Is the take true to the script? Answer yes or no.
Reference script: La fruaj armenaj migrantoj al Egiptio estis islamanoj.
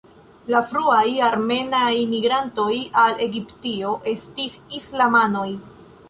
yes